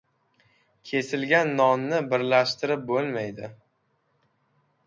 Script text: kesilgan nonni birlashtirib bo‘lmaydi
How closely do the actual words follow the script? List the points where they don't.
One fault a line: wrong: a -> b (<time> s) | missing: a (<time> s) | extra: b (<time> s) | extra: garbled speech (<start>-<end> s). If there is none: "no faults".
no faults